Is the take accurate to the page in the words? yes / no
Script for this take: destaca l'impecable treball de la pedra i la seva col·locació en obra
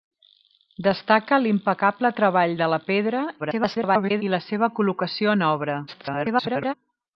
no